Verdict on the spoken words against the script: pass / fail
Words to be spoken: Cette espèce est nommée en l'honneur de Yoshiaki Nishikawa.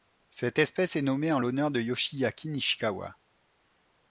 pass